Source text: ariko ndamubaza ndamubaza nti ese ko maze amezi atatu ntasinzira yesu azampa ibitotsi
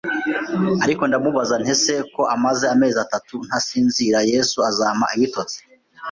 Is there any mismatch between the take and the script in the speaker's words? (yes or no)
yes